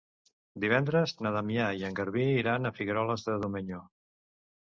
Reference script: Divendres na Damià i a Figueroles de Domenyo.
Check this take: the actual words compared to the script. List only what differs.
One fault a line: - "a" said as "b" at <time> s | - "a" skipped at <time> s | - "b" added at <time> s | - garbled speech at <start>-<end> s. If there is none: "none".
- "en Garbí iran" added at 1.9 s